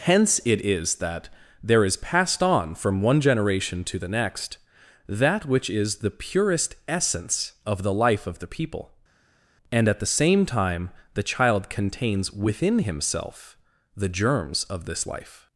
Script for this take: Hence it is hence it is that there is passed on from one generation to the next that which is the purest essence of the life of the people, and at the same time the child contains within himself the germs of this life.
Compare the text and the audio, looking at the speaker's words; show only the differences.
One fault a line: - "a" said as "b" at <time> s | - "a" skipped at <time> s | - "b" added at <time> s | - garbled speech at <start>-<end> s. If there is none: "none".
- "hence it is" skipped at 0.9 s